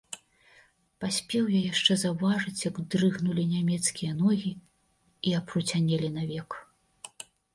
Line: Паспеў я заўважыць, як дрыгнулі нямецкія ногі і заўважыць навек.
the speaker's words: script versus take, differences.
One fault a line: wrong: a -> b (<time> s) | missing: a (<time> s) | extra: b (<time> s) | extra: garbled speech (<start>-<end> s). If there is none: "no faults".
extra: яшчэ (1.7 s)
wrong: заўважыць -> апруцянелі (5.4 s)